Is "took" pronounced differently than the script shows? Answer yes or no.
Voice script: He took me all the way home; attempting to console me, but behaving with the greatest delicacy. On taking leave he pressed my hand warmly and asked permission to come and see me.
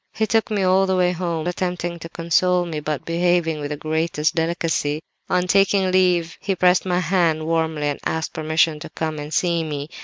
no